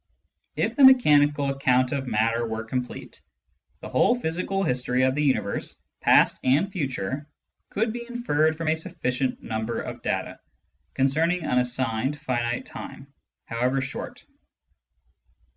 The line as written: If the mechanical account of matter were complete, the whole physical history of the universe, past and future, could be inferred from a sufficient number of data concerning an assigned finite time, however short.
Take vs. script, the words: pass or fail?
pass